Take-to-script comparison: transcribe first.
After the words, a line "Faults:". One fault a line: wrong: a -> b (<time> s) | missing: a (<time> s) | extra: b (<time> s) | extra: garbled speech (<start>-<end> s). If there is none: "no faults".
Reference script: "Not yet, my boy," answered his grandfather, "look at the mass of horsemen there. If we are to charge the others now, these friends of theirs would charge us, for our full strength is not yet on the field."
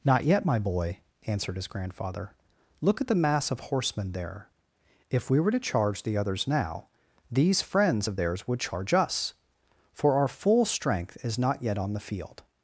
"Not yet, my boy," answered his grandfather, "look at the mass of horsemen there. If we were to charge the others now, these friends of theirs would charge us, for our full strength is not yet on the field."
Faults:
wrong: are -> were (5.4 s)